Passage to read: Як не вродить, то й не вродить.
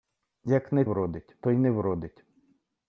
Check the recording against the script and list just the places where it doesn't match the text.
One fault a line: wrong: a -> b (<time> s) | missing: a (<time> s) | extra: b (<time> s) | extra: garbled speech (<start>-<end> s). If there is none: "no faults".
no faults